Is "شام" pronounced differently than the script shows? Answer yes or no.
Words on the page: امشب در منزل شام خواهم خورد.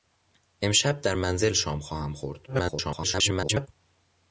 no